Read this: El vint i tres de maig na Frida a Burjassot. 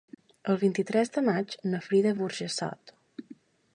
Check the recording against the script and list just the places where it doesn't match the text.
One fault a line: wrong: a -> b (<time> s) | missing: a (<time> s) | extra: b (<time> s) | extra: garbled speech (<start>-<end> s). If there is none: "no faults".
no faults